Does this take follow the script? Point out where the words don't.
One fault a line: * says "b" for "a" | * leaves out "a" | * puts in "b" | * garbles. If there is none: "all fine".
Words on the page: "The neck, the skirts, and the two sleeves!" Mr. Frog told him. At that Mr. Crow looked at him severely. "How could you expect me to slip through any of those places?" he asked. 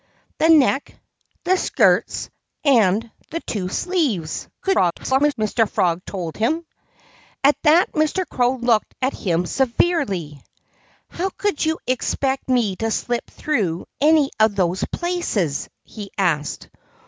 * garbles